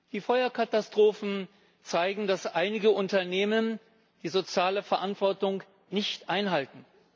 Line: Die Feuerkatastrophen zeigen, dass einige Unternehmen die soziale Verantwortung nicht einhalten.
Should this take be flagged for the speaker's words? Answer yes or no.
no